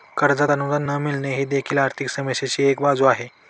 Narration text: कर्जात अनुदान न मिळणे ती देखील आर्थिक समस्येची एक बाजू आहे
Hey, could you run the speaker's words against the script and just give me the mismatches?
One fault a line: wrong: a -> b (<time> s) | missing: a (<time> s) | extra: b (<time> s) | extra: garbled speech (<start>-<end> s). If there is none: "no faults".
wrong: ती -> ही (1.3 s)